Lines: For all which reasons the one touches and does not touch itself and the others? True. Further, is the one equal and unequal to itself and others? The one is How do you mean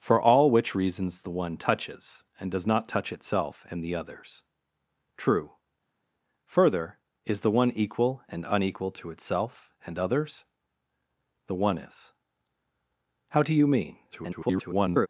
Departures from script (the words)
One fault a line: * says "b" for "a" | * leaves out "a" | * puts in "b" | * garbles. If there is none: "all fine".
* garbles